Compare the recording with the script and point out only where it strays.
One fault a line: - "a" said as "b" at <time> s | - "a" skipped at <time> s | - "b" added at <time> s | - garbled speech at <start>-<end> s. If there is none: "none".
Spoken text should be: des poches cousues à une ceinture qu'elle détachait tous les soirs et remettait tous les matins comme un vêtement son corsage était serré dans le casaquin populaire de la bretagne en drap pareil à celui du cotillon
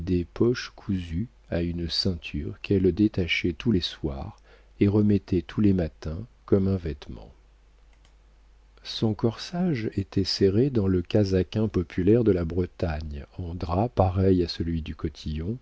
none